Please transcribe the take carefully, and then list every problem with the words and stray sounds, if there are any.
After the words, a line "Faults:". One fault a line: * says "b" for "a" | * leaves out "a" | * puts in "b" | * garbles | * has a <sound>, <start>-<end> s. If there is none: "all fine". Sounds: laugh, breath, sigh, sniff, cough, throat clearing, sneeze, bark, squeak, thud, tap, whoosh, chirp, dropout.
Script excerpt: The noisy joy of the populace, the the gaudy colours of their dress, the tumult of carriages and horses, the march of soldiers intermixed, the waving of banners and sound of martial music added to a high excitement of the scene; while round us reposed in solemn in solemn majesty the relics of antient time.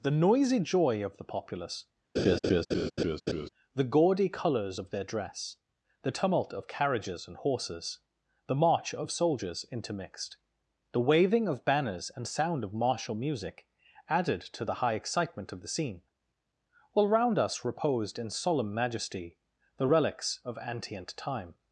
The noisy joy of the populace, the gaudy colours of their dress, the tumult of carriages and horses, the march of soldiers intermixed, the waving of banners and sound of martial music added to the high excitement of the scene; while round us reposed in solemn majesty the relics of antient time.
Faults:
* has a laugh, 2.2-3.5 s
* leaves out "the"
* says "the" for "a"
* leaves out "in solemn"